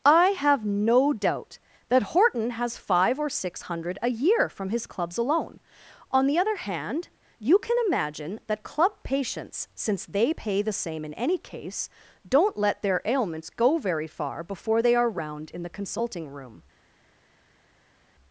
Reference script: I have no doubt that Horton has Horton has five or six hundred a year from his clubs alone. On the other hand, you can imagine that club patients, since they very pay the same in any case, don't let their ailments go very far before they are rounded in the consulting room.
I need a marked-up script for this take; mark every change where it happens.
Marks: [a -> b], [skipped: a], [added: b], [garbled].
I have no doubt that Horton has [skipped: Horton has] five or six hundred a year from his clubs alone. On the other hand, you can imagine that club patients, since they [skipped: very] pay the same in any case, don't let their ailments go very far before they are [rounded -> round] in the consulting room.